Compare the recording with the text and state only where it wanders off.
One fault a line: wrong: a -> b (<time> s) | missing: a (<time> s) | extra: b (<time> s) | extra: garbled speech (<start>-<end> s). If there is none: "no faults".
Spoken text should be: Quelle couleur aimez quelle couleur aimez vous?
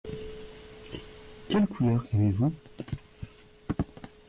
missing: quelle couleur aimez (2.3 s)